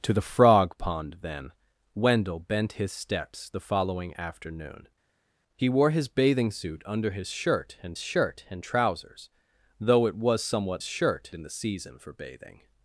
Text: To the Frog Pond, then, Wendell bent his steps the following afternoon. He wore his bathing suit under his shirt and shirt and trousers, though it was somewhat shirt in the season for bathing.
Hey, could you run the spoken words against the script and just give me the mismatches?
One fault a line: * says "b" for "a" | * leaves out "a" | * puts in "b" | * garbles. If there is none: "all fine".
all fine